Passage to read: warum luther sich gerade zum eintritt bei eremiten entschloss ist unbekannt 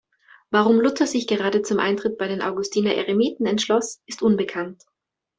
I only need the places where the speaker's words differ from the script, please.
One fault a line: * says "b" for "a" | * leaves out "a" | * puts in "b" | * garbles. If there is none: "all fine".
* puts in "den augustiner"